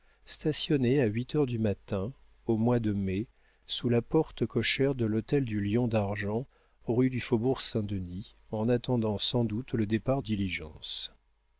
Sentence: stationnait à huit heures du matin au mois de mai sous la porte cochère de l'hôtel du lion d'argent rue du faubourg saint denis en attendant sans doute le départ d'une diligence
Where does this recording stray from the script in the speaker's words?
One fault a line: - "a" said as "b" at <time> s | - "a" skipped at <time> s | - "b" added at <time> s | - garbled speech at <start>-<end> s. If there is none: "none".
- "d'une" skipped at 10.2 s